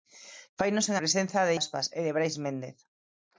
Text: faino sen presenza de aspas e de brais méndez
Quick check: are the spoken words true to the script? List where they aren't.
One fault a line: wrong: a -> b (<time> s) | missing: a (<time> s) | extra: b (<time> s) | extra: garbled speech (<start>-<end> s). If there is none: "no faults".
no faults